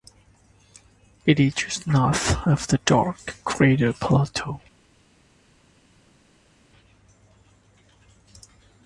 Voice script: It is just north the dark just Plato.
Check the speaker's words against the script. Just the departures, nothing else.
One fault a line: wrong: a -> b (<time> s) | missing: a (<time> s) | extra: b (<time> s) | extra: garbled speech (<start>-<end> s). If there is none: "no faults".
extra: of (2.4 s)
wrong: just -> crater (3.4 s)